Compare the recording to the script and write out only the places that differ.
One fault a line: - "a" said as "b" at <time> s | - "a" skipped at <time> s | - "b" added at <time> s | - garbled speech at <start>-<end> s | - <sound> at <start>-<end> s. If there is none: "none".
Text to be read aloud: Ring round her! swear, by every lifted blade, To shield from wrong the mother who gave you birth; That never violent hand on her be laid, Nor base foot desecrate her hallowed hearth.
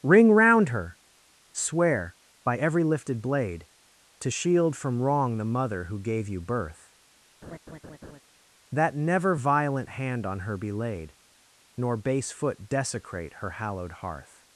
- laugh at 7.4-8.2 s